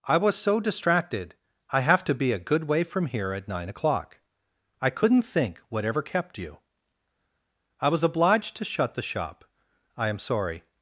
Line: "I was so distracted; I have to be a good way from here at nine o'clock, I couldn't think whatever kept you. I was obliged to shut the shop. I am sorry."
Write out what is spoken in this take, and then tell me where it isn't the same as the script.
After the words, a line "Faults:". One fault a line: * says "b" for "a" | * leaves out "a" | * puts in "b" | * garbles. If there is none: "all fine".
"I was so distracted; I have to be a good way from here at nine o'clock, I couldn't think whatever kept you. I was obliged to shut the shop. I am sorry."
Faults:
all fine